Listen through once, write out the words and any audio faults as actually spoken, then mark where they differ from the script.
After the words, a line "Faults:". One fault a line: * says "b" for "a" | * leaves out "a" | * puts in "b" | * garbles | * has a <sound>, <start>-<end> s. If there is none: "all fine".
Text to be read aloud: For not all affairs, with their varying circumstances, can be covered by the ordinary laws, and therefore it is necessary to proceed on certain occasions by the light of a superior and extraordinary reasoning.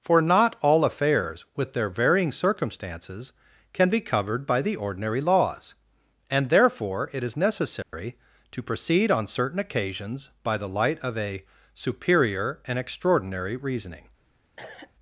For not all affairs, with their varying circumstances, can be covered by the ordinary laws, and therefore it is necessary to proceed on certain occasions by the light of a superior and extraordinary reasoning.
Faults:
* has a dropout, 7.8-7.9 s
* has a cough, 14.6-14.9 s